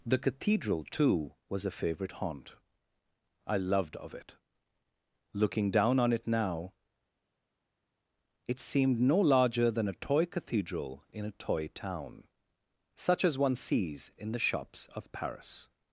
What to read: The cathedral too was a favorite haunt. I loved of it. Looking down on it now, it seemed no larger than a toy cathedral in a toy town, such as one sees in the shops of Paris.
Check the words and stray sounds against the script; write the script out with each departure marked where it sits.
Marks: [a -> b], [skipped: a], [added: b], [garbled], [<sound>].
The cathedral too was a favorite haunt. I loved of it. Looking down on it now, it seemed no larger than a toy cathedral in a toy town, such as one sees in the shops of Paris.